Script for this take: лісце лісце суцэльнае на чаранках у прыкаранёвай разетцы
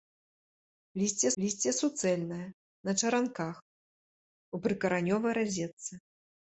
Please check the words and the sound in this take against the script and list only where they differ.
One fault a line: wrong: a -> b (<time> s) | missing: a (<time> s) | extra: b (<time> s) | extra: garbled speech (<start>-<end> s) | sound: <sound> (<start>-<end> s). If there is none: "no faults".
no faults